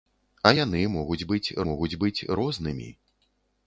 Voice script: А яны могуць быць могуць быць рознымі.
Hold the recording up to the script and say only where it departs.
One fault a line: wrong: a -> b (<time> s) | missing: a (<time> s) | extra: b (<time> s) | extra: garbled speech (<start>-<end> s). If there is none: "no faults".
no faults